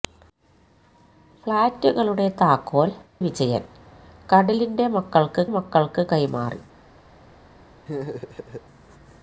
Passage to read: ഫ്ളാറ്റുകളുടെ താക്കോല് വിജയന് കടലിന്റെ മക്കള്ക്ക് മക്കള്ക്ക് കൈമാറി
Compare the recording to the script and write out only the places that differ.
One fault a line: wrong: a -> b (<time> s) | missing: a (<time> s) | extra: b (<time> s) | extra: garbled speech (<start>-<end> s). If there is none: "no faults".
no faults